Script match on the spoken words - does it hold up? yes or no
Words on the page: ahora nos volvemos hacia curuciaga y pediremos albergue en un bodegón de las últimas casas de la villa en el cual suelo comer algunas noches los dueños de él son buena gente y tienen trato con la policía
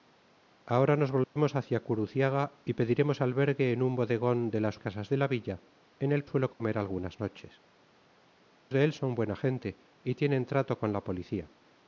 no